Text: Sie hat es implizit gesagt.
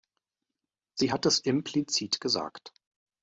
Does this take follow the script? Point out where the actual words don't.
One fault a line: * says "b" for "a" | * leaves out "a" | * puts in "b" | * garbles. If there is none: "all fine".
all fine